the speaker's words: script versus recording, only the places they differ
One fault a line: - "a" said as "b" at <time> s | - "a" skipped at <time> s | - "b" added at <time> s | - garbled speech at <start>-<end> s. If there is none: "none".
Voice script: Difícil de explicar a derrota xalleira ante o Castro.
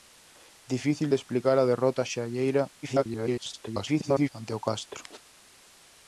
- garbled speech at 2.8-4.3 s